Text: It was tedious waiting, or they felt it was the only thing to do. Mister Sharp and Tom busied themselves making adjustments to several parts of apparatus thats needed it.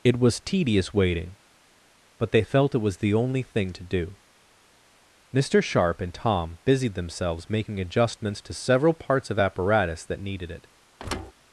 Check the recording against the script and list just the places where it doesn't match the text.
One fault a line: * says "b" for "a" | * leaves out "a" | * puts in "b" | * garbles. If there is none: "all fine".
* says "but" for "or"
* says "that" for "thats"